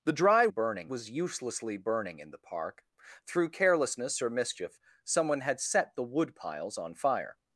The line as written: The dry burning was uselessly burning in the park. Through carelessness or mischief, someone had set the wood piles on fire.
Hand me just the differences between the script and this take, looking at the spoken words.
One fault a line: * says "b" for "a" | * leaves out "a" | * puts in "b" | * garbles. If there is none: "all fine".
all fine